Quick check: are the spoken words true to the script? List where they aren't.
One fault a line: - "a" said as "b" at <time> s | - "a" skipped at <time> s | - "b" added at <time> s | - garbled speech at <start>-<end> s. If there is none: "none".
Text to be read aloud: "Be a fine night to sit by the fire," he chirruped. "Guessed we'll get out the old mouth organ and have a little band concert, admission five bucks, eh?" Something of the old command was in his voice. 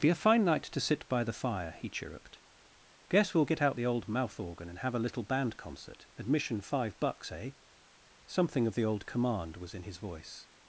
- "Guessed" said as "Guess" at 3.1 s